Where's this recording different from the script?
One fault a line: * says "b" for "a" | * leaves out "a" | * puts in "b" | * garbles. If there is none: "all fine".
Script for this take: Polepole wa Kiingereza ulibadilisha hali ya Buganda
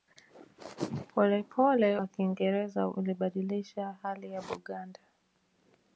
all fine